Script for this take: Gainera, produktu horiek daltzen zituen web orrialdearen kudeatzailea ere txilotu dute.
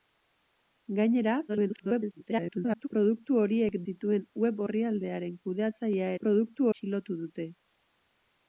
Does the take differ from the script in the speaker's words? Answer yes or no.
yes